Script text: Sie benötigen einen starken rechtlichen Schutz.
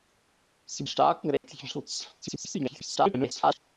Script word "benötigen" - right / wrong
wrong